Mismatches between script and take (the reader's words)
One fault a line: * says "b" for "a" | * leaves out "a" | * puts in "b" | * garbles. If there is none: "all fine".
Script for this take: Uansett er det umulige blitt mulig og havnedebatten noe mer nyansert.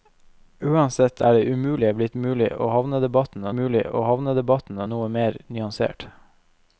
* puts in "mulig og havnedebatten"